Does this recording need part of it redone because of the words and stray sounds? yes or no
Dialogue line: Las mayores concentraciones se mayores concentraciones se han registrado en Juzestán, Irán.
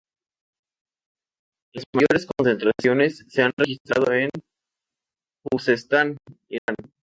yes